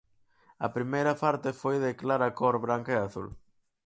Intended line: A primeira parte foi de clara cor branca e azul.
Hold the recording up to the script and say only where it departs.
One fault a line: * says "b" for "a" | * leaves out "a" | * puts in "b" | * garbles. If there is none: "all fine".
all fine